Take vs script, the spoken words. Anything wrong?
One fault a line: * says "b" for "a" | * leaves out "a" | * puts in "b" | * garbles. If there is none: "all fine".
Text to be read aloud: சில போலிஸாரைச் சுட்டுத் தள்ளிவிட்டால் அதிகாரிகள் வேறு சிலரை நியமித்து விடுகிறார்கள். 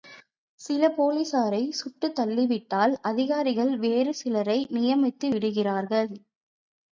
all fine